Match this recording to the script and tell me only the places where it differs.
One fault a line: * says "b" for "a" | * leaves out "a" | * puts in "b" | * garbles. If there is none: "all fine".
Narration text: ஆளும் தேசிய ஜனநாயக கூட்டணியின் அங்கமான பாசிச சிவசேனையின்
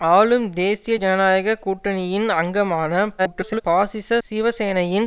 * garbles